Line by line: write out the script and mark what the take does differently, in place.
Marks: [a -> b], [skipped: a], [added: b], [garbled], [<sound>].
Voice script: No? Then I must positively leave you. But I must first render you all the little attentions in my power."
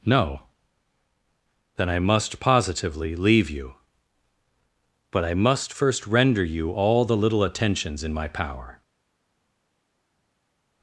No? Then I must positively leave you. But I must first render you all the little attentions in my power."